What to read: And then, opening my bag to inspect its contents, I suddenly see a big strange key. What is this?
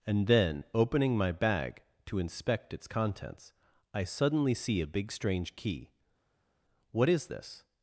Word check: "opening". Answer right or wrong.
right